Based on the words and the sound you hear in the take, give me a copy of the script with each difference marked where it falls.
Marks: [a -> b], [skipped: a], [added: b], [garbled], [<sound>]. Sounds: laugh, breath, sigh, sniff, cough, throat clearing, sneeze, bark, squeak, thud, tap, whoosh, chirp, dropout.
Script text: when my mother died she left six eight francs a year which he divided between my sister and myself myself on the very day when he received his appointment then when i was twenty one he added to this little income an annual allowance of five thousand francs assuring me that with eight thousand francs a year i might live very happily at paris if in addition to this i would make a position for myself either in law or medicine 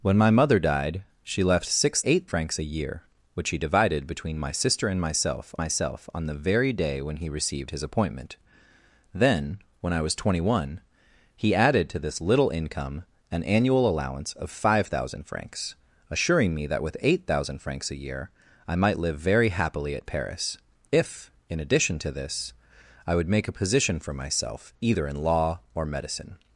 when my mother died she left six eight francs a year which he divided between my sister and myself myself on the very day when he received his appointment then when i was twenty one he added to this little income an annual allowance of five thousand francs assuring me that with eight thousand francs a year i might live very happily at paris if in addition to this i would make a position for myself either in law or medicine